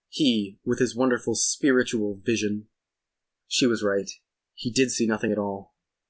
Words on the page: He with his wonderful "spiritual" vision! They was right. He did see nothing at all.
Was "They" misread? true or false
true